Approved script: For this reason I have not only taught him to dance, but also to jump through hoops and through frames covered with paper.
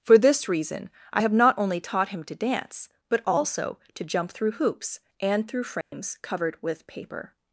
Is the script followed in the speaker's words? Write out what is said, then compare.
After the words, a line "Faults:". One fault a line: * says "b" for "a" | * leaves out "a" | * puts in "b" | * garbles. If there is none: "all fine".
For this reason I have not only taught him to dance, but also to jump through hoops and through frames covered with paper.
Faults:
all fine